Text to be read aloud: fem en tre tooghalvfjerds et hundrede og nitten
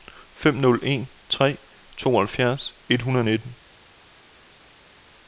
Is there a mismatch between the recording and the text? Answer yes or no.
yes